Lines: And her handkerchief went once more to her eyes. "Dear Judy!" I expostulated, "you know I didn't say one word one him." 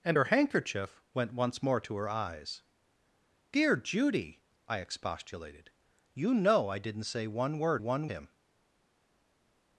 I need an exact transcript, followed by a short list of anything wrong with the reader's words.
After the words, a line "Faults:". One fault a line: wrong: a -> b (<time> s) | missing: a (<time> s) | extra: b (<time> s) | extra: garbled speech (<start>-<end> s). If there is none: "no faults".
And her handkerchief went once more to her eyes. "Dear Judy!" I expostulated, "you know I didn't say one word one him."
Faults:
no faults